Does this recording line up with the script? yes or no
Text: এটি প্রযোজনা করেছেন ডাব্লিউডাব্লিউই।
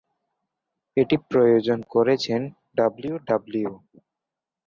yes